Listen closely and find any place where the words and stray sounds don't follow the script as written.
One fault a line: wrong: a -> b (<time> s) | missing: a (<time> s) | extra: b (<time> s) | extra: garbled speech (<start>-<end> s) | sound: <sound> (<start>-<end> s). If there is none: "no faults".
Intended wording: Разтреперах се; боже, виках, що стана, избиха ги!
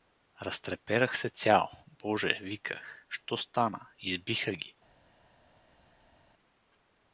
extra: цял (1.3 s)